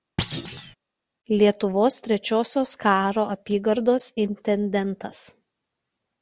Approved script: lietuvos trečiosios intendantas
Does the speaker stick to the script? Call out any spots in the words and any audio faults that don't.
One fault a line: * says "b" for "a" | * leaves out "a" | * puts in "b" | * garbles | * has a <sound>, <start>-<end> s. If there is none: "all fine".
* has a thud, 0.2-0.8 s
* puts in "karo apygardos"